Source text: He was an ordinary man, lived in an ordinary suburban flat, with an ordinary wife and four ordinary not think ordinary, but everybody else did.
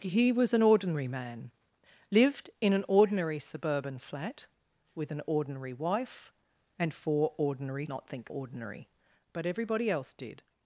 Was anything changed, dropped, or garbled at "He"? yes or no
no